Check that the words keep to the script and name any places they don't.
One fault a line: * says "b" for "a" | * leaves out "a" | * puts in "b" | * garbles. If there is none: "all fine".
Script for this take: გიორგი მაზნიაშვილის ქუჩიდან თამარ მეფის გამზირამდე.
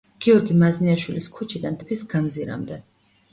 * leaves out "თამარ"